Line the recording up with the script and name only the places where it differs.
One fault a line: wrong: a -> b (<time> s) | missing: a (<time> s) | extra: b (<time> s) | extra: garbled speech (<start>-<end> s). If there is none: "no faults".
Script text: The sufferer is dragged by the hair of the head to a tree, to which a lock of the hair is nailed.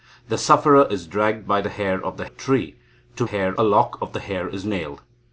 missing: head to (2.2 s)
wrong: which -> hair (3.2 s)